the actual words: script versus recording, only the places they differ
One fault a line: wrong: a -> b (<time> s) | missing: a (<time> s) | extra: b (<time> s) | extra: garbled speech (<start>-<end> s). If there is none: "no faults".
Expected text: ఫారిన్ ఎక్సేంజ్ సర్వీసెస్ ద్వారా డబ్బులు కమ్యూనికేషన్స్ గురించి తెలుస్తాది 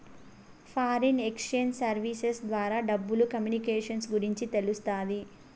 no faults